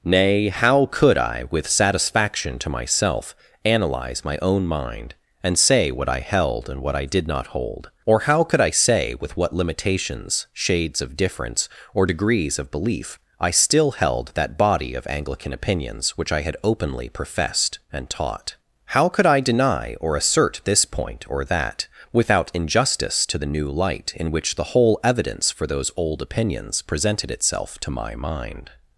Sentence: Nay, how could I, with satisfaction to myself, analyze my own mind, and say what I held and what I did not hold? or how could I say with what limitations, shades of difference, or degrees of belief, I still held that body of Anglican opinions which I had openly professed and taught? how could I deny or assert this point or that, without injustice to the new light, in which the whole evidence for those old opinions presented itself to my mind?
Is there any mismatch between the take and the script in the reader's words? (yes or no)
no